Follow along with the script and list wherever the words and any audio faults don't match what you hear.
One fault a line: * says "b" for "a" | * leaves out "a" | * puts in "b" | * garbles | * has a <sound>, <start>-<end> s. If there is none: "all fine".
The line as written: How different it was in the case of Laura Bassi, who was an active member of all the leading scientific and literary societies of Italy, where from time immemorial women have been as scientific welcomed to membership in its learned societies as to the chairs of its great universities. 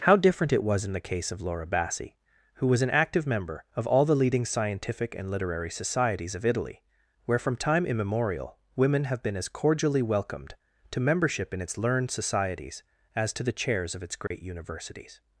* says "cordially" for "scientific"
* has a dropout, 14.3-14.3 s